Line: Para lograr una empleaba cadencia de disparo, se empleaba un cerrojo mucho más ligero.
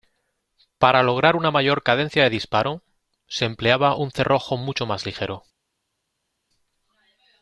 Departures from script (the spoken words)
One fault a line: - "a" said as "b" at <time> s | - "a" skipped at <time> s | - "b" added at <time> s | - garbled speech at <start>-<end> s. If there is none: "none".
- "empleaba" said as "mayor" at 1.5 s